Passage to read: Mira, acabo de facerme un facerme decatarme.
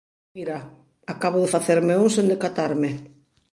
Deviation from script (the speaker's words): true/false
true